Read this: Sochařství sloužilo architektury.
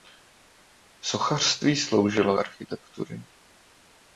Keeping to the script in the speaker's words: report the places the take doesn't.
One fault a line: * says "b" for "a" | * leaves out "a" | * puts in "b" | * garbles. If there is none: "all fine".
all fine